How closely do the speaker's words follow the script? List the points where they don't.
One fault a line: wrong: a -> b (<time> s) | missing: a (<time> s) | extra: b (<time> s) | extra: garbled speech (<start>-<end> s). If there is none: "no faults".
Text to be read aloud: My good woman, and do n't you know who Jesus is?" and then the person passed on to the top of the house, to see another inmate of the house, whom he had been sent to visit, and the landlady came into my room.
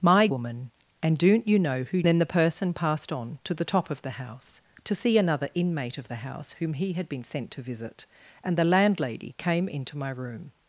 missing: good (0.3 s)
missing: Jesus is and (2.0 s)